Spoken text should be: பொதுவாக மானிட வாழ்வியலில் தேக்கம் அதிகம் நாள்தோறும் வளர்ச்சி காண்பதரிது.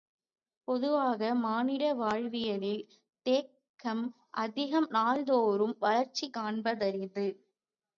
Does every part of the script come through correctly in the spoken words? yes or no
yes